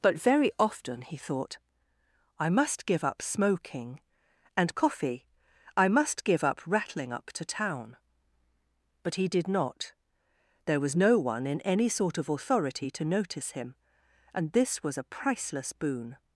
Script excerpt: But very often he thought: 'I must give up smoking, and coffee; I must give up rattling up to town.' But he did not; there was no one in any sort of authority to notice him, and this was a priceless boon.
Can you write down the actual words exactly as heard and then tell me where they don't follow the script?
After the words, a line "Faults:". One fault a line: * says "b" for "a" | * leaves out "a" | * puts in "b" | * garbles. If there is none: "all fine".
But very often he thought: 'I must give up smoking, and coffee; I must give up rattling up to town.' But he did not; there was no one in any sort of authority to notice him, and this was a priceless boon.
Faults:
all fine